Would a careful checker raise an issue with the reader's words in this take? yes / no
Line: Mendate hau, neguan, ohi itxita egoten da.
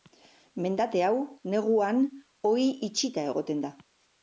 no